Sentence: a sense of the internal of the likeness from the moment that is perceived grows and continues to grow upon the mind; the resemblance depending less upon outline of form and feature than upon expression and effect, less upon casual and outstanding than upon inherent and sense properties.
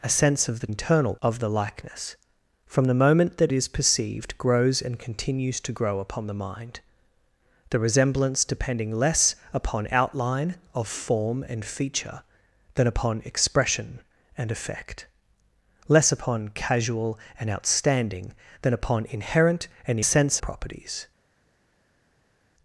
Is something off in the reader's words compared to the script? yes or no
no